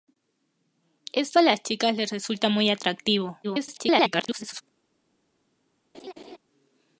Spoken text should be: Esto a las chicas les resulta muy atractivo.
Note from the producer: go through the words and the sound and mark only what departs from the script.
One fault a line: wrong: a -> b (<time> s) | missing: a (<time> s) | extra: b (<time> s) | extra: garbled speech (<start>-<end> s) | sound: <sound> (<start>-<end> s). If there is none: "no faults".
extra: garbled speech (3.4-4.6 s)
sound: laugh (5.9-6.4 s)